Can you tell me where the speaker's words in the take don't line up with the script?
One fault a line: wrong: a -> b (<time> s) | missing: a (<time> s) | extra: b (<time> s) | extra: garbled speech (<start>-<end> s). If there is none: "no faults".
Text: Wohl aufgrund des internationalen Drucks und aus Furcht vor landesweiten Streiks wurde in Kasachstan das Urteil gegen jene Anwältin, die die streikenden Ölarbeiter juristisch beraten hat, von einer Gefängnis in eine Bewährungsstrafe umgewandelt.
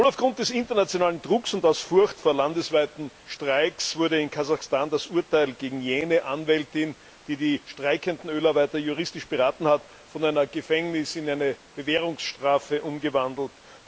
no faults